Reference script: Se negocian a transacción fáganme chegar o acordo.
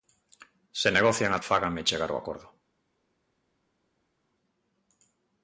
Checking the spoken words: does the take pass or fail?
fail